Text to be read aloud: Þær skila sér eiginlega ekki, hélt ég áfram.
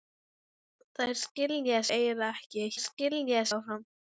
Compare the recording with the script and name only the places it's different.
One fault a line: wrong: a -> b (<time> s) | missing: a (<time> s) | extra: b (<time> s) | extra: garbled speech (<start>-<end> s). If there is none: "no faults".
missing: sér (1.8 s)
wrong: hélt -> skila (2.9 s)